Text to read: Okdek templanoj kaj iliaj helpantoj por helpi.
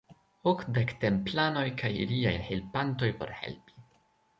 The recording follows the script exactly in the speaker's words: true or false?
true